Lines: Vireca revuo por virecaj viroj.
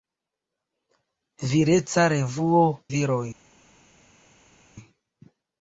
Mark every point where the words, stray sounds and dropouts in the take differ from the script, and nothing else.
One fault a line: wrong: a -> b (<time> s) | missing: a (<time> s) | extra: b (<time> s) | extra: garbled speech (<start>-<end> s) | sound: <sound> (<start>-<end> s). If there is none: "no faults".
missing: por virecaj (2.6 s)